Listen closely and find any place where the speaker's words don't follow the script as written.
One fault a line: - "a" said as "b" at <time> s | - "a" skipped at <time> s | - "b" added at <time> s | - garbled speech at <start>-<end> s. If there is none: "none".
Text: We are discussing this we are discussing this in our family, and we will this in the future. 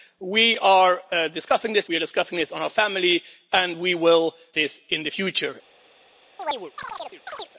none